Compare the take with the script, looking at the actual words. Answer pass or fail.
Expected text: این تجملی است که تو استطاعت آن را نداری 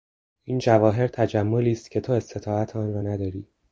fail